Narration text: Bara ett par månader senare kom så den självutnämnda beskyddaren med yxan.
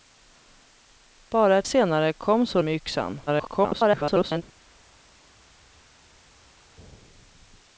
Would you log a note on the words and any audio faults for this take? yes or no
yes